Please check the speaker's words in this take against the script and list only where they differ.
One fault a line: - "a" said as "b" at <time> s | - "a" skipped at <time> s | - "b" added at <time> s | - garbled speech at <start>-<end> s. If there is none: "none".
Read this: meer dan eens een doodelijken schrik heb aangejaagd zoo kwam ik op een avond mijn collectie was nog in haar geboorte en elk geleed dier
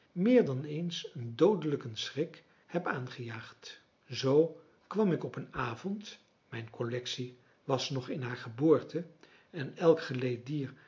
none